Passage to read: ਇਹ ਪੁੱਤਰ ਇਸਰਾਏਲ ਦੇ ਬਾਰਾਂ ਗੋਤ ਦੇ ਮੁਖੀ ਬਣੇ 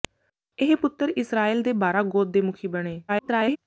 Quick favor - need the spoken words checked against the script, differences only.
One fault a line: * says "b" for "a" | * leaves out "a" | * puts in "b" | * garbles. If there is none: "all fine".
* garbles